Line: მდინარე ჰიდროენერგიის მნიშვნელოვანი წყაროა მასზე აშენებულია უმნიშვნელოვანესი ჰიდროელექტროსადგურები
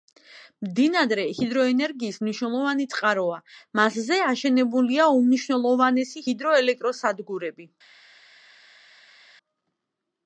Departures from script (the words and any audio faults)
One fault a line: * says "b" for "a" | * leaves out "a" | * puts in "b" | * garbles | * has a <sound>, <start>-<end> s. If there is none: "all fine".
all fine